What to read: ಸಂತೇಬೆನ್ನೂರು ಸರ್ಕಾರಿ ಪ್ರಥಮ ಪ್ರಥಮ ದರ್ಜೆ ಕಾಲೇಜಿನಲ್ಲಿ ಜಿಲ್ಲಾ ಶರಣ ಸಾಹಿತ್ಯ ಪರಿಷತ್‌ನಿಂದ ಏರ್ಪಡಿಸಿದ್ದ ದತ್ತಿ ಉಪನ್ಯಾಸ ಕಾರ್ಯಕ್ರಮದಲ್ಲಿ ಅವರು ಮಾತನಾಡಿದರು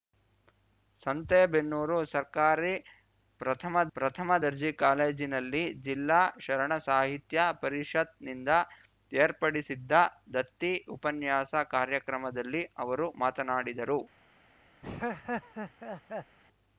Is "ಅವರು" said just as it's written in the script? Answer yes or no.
yes